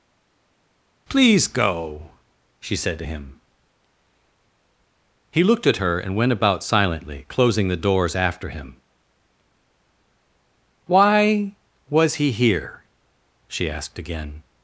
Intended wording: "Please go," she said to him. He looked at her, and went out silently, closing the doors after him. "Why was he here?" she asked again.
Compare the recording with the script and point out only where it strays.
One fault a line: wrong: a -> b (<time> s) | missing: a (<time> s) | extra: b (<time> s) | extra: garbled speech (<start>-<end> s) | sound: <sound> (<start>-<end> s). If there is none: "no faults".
wrong: out -> about (6.3 s)